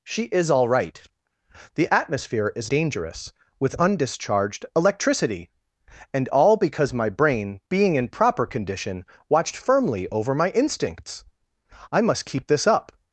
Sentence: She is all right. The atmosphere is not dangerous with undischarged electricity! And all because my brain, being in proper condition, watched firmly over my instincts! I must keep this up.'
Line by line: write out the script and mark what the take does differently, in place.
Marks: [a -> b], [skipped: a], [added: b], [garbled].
She is all right. The atmosphere is [skipped: not] dangerous with undischarged electricity! And all because my brain, being in proper condition, watched firmly over my instincts! I must keep this up.'